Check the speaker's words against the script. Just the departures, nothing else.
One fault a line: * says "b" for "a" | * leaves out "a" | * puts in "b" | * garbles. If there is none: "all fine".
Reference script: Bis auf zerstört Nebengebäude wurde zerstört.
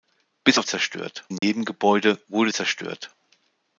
all fine